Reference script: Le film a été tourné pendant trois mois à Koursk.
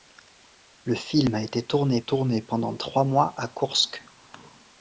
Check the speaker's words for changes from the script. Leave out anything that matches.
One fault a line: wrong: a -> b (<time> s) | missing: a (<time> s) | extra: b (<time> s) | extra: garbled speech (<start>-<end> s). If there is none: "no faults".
extra: tourné (2.0 s)